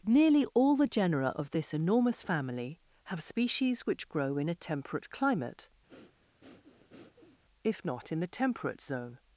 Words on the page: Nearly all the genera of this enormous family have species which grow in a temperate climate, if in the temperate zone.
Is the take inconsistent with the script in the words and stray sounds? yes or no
yes